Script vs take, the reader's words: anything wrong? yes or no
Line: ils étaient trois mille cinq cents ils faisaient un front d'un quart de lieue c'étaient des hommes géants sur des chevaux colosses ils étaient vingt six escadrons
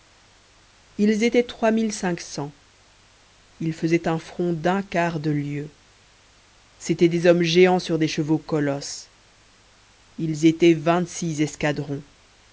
no